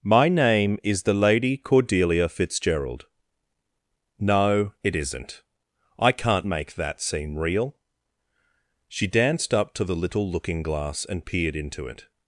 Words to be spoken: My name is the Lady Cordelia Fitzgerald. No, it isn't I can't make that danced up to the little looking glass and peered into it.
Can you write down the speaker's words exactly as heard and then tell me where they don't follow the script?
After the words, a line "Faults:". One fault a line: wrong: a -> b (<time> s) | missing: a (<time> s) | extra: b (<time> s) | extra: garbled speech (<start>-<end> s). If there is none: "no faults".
My name is the Lady Cordelia Fitzgerald. No, it isn't I can't make that seem real." She danced up to the little looking glass and peered into it.
Faults:
extra: seem real She (7.0 s)